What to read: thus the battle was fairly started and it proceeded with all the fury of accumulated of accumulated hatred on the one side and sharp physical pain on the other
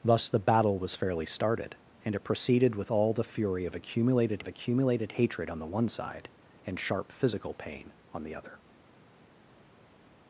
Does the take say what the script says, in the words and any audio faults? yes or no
yes